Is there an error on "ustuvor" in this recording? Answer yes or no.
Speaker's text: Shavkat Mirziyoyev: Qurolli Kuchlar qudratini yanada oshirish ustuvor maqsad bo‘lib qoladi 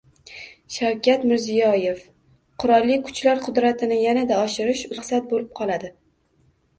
yes